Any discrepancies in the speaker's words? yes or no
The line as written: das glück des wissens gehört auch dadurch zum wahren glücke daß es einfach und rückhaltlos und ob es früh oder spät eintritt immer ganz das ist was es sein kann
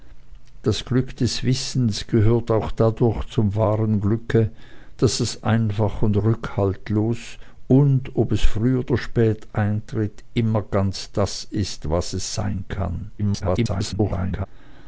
yes